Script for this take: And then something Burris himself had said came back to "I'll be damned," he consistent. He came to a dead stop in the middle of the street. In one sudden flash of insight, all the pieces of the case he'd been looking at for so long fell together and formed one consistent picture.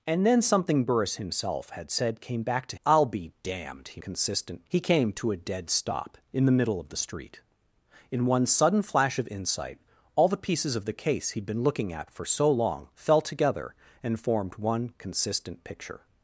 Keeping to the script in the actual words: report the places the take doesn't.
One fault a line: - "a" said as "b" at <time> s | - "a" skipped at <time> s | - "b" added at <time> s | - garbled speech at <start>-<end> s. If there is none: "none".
none